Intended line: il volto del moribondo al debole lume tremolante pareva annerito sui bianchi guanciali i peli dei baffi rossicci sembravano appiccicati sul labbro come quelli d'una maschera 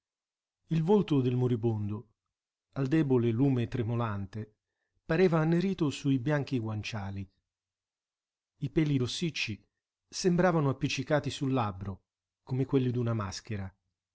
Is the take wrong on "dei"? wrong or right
wrong